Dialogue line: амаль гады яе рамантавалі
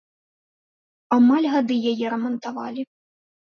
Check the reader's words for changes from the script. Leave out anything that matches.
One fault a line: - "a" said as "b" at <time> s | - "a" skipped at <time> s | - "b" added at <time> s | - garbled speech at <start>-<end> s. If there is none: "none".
none